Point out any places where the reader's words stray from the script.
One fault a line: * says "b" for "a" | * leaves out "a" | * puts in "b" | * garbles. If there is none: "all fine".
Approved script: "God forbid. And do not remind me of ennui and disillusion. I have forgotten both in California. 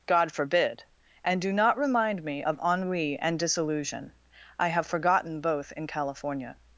all fine